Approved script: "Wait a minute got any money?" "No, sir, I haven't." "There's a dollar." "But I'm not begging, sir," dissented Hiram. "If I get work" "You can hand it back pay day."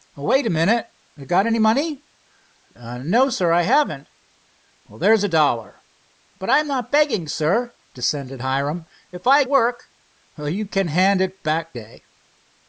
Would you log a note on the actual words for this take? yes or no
yes